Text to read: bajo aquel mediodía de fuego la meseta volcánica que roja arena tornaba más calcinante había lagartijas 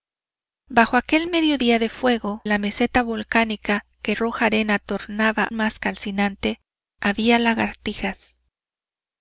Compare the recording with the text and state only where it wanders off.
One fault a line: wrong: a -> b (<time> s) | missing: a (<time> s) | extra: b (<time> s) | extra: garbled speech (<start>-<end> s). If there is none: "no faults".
no faults